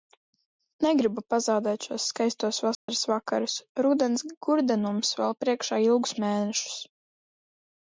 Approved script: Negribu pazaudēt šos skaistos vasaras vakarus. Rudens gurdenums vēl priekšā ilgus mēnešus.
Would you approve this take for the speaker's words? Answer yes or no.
yes